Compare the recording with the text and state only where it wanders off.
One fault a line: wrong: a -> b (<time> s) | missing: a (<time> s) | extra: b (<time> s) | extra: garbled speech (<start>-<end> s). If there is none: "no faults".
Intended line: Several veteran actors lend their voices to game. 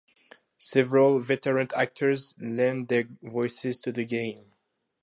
extra: the (3.9 s)